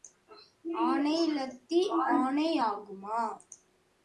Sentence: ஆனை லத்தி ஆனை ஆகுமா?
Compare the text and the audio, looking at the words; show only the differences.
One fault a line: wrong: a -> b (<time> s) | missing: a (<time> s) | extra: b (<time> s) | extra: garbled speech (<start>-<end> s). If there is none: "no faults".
no faults